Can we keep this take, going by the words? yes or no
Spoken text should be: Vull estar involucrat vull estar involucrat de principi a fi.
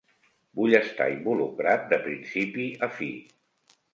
no